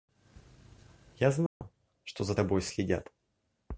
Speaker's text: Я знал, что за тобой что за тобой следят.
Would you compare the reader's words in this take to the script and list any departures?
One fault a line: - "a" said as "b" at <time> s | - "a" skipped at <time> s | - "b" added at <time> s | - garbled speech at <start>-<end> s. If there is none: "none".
- "что за тобой" skipped at 2.6 s